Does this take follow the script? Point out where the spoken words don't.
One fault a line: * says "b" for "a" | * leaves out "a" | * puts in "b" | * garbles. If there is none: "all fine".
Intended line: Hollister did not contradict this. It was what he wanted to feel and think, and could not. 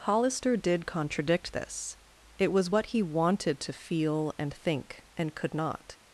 * leaves out "not"